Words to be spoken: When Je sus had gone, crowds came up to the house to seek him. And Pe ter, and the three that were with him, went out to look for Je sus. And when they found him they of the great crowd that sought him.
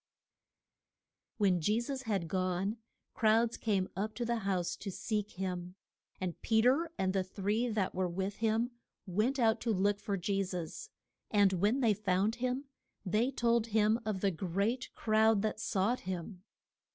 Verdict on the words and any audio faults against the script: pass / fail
fail